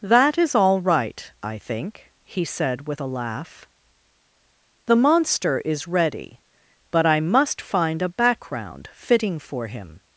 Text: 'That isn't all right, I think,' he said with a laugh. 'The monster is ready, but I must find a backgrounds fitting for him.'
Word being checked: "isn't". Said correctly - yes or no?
no